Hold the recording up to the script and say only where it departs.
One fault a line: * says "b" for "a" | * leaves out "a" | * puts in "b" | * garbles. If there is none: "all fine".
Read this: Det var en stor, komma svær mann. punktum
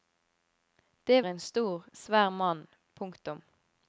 * leaves out "var"
* leaves out "komma"